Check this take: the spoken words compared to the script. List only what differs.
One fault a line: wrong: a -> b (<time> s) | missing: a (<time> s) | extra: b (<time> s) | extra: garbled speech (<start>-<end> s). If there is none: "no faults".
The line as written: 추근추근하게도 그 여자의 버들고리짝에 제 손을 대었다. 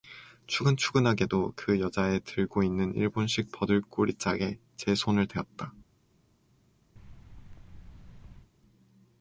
extra: 들고 있는 일본식 (2.2 s)